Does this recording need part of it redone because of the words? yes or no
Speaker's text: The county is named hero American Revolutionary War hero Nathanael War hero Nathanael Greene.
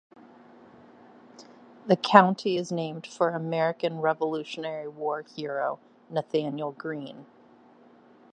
yes